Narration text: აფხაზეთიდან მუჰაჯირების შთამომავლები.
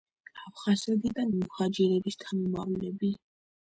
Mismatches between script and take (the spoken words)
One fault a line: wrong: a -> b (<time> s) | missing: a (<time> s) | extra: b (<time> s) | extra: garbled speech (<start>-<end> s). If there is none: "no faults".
no faults